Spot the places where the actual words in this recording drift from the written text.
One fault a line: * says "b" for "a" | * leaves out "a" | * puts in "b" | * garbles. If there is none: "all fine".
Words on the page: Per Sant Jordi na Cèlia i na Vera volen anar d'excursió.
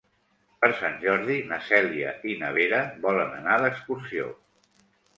all fine